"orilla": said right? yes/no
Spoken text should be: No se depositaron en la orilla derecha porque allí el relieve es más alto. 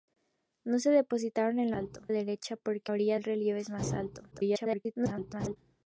no